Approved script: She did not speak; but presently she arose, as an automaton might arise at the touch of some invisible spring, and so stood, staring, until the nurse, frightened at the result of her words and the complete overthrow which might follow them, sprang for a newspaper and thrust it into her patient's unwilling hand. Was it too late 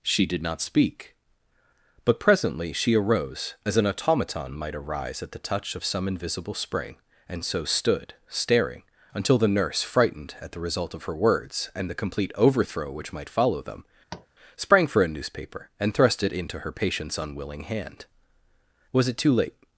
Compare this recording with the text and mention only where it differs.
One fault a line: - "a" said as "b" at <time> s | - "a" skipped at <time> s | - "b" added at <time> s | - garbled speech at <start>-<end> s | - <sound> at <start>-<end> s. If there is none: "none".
- tap at 14.1-14.3 s